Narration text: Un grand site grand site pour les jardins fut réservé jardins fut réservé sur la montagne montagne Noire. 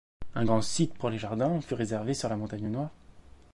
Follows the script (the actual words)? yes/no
no